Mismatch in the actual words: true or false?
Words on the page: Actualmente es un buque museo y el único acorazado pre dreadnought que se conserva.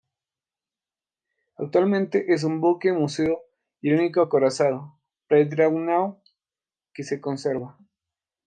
false